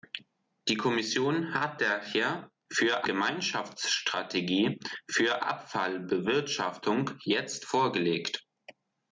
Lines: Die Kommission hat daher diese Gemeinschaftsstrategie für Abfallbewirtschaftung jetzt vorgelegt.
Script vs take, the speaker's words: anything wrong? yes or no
yes